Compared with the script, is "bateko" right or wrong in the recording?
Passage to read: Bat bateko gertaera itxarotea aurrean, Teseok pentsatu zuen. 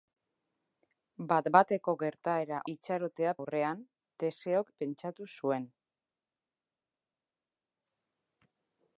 right